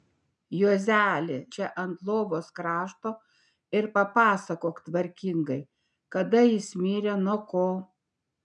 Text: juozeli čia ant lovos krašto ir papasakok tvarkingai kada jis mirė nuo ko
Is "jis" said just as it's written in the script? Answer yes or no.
yes